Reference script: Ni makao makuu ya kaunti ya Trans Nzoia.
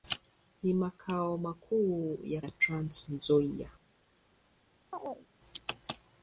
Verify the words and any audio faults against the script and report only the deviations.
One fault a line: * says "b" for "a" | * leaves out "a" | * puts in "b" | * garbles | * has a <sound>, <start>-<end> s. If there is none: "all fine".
* leaves out "kaunti"
* has a chirp, 4.9-5.3 s